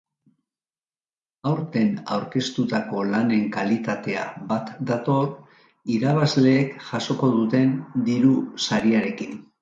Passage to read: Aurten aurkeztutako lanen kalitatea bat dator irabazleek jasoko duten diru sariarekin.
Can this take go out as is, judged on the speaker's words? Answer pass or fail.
pass